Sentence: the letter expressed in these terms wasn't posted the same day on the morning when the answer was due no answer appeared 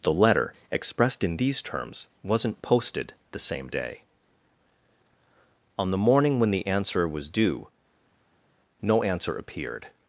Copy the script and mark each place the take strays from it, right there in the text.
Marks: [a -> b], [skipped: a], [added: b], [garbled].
the letter expressed in these terms wasn't posted the same day on the morning when the answer was due no answer appeared